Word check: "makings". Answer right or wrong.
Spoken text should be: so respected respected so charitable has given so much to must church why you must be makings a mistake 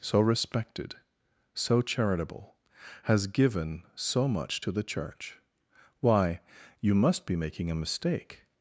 wrong